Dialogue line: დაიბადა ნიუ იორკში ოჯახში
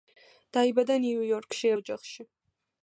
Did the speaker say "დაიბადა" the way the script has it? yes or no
yes